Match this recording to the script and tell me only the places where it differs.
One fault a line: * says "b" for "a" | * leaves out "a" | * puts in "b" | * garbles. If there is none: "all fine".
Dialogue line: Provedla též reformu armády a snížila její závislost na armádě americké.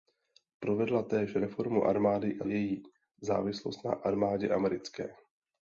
* leaves out "snížila"